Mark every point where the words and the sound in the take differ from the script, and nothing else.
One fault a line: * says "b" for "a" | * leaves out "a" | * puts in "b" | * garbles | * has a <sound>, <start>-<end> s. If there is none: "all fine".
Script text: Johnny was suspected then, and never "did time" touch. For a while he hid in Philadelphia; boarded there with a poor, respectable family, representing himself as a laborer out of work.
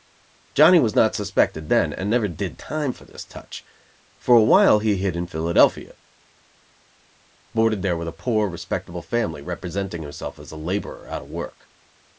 * puts in "not"
* puts in "for this"